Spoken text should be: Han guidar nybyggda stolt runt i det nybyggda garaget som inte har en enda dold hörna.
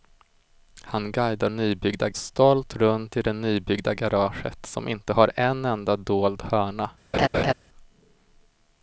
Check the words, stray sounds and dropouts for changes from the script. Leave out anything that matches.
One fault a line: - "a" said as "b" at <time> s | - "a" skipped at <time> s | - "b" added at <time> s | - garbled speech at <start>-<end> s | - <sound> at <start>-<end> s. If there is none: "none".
- laugh at 7.1-7.5 s